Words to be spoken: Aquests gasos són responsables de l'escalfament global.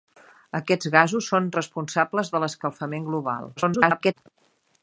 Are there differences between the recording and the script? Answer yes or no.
yes